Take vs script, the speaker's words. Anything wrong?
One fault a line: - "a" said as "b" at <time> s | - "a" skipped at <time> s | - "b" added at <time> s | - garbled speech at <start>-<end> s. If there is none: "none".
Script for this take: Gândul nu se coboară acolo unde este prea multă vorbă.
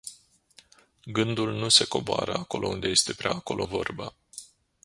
- "multă" said as "acolo" at 3.3 s